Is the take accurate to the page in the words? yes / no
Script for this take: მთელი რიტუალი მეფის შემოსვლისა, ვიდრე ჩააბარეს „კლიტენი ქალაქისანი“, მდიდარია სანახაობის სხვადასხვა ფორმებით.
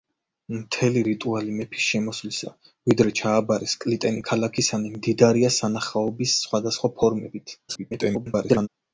no